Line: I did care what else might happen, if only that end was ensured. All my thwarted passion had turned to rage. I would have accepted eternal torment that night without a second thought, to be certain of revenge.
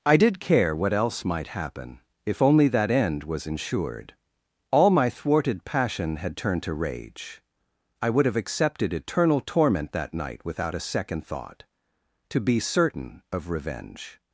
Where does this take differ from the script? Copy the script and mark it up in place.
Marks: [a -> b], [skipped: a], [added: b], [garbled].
I did care what else might happen, if only that end was ensured. All my thwarted passion had turned to rage. I would have accepted eternal torment that night without a second thought, to be certain of revenge.